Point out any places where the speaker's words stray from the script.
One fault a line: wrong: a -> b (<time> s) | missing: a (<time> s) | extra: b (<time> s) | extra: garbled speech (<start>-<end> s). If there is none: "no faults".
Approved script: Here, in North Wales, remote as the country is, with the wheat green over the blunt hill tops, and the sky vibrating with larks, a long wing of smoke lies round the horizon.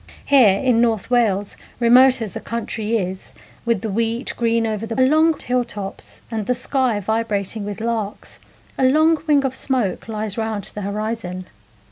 wrong: blunt -> long (5.0 s)